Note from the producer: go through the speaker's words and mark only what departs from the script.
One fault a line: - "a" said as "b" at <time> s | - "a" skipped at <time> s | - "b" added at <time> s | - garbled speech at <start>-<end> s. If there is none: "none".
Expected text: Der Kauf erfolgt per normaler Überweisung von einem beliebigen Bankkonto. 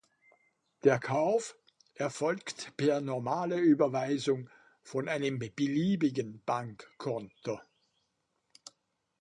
none